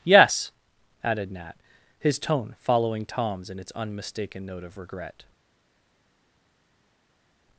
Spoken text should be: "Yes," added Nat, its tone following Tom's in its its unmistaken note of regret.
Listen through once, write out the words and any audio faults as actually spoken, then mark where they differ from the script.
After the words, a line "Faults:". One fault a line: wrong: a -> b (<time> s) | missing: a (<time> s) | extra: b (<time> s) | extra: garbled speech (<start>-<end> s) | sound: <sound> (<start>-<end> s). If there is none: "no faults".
"Yes," added Nat, his tone following Tom's in its unmistaken note of regret.
Faults:
wrong: its -> his (2.0 s)
missing: its (3.7 s)